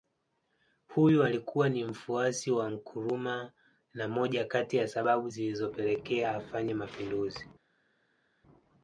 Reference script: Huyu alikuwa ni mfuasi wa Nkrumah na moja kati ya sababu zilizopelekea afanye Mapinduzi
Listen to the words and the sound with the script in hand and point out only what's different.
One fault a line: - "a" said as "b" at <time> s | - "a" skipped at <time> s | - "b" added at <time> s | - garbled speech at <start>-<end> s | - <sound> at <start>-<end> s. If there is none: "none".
none